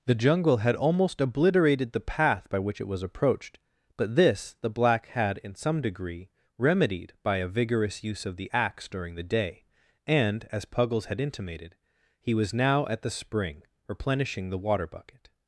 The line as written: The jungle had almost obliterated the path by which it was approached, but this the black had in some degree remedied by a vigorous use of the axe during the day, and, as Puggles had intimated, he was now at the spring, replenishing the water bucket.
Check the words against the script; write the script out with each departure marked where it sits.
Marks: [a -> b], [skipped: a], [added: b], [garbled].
The jungle had almost obliterated the path by which it was approached, but this the black had in some degree remedied by a vigorous use of the axe during the day, and, as Puggles had intimated, he was now at the spring, replenishing the water bucket.